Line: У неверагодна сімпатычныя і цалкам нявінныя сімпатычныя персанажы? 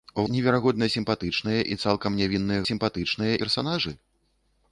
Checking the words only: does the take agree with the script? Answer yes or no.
yes